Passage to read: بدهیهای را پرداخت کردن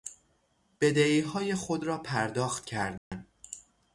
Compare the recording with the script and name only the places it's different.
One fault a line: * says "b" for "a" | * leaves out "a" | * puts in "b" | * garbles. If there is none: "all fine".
* puts in "خود"